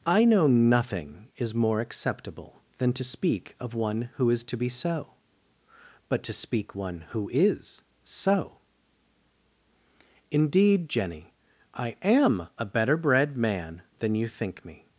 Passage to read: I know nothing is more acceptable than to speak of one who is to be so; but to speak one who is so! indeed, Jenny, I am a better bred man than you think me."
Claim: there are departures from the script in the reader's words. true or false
false